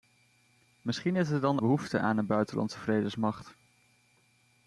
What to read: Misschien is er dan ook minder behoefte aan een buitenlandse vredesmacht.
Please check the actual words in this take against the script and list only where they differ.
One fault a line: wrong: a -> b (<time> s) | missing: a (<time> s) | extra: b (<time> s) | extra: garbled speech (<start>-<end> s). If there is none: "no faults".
missing: ook minder (1.6 s)